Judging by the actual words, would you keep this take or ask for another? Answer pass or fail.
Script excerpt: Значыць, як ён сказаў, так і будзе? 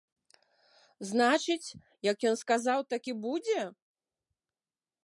pass